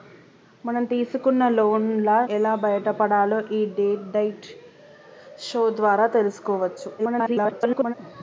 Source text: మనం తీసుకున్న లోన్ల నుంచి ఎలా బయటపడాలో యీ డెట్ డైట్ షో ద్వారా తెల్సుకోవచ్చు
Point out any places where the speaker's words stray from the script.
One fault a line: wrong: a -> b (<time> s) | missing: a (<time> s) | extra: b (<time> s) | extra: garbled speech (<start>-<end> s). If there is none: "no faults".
missing: నుంచి (2.1 s)
extra: garbled speech (7.0-7.9 s)